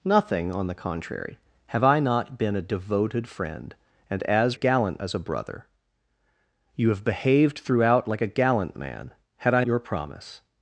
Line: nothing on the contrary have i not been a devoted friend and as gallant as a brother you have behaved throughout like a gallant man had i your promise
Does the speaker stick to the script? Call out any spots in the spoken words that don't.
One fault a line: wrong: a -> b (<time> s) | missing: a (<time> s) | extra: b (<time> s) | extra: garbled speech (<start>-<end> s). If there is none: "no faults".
no faults